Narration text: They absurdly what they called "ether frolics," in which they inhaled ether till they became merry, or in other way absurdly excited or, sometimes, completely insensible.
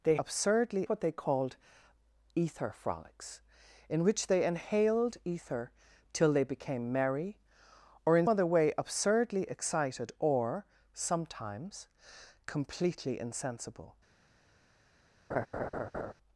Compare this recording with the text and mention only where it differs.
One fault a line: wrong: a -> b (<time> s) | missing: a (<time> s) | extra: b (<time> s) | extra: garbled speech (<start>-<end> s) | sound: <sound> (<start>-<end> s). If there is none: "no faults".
sound: laugh (15.3-16.1 s)